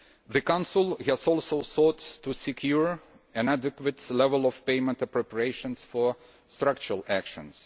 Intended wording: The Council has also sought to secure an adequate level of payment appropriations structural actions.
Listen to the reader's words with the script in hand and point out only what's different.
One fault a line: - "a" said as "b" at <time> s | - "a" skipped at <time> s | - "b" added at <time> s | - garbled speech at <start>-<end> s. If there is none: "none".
- "for" added at 5.8 s